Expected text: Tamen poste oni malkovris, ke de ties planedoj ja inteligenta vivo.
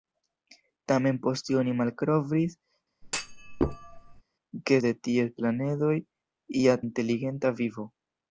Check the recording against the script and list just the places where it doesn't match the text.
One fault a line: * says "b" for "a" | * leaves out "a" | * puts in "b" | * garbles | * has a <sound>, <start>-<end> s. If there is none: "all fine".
* has a thud, 3.0-4.2 s